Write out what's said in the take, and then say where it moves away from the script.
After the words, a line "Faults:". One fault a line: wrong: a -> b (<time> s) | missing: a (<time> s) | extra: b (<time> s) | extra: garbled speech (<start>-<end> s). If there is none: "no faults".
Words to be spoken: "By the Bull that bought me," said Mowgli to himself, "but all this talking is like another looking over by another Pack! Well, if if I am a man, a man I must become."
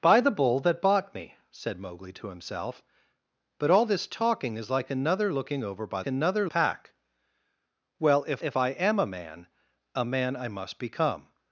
"By the Bull that bought me," said Mowgli to himself, "but all this talking is like another looking over by another Pack! Well, if if I am a man, a man I must become."
Faults:
no faults